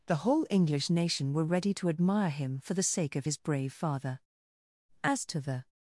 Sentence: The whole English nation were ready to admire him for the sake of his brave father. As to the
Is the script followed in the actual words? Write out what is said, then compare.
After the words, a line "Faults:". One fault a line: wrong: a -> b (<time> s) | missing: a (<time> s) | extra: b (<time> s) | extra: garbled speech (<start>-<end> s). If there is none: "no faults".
The whole English nation were ready to admire him for the sake of his brave father. As to the
Faults:
no faults